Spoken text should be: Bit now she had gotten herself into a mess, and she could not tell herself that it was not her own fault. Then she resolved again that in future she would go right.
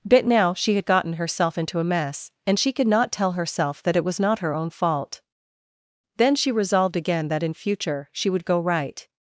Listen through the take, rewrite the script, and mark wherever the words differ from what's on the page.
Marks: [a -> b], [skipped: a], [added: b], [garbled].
Bit now she had gotten herself into a mess, and she could not tell herself that it was not her own fault. Then she resolved again that in future she would go right.